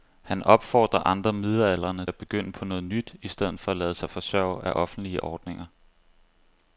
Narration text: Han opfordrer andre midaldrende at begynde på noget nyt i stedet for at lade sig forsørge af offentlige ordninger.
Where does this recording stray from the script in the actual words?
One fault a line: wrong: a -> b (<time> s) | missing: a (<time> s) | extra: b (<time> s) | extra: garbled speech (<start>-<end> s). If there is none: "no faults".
no faults